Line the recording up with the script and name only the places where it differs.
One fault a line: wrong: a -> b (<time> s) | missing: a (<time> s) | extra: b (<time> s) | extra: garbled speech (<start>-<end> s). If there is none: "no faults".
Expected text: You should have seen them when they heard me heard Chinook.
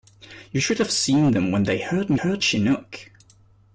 no faults